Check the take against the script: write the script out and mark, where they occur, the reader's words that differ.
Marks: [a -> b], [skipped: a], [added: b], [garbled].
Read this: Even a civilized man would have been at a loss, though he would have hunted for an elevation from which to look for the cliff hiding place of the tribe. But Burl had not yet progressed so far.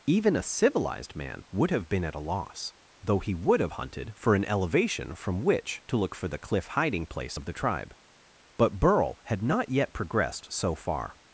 Even a civilized man would have been at a loss, though he would have hunted for an elevation from which to look for the cliff hiding place of the tribe. But Burl had not yet progressed so far.